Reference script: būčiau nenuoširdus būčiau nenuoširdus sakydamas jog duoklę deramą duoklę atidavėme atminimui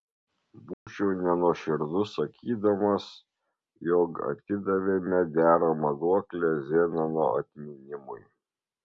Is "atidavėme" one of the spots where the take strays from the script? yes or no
yes